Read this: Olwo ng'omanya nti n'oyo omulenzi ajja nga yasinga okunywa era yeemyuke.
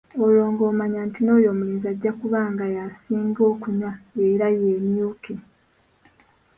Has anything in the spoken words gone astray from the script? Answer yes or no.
yes